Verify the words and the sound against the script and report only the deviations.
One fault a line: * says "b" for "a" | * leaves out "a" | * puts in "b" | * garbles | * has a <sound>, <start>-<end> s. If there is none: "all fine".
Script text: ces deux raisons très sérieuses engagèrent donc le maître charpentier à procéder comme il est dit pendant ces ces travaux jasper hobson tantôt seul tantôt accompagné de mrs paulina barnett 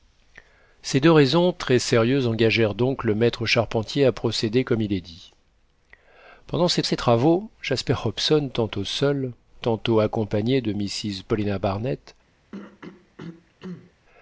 * has a throat clearing, 12.5-13.9 s